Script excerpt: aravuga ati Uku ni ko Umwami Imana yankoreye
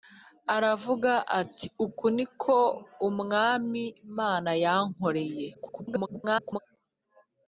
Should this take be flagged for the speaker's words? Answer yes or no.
yes